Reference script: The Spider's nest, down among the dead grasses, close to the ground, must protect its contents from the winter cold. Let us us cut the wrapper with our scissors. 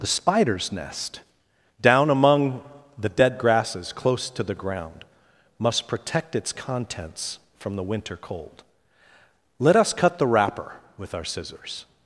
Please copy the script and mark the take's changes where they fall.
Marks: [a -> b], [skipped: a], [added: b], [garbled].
The Spider's nest, down among the dead grasses, close to the ground, must protect its contents from the winter cold. Let us [skipped: us] cut the wrapper with our scissors.